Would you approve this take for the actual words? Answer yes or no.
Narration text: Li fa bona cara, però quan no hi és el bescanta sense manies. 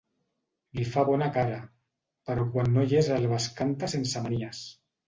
yes